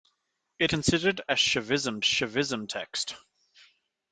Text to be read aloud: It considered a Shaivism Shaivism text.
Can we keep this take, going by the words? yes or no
yes